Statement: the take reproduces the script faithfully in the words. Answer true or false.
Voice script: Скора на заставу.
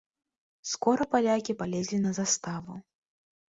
false